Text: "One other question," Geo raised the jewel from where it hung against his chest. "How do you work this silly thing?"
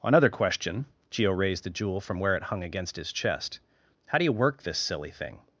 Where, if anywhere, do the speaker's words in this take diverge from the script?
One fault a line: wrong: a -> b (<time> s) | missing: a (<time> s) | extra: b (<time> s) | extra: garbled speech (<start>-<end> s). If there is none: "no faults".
wrong: One other -> Another (0.0 s)